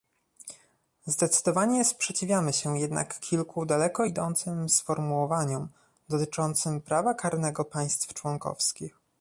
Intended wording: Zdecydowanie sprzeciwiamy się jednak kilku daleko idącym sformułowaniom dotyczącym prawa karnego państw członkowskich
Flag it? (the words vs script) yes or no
no